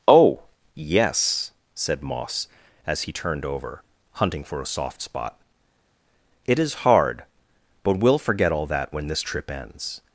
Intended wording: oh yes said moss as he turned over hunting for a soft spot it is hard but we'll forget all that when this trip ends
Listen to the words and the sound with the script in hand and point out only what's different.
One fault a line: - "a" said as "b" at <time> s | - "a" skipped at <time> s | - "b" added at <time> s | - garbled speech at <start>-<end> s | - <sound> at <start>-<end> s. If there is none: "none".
none